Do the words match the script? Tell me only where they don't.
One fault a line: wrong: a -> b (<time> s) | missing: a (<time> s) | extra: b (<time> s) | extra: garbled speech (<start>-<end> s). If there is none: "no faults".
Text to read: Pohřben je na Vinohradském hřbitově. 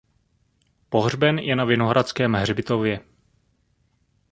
no faults